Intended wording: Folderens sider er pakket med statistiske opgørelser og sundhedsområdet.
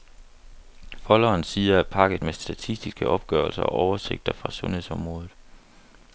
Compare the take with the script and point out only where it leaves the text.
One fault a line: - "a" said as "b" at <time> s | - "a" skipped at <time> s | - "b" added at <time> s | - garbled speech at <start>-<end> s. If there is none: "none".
- "oversigter fra" added at 3.7 s